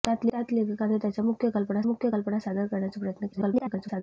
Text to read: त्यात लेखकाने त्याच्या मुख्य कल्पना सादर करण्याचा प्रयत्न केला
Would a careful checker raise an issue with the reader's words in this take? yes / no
yes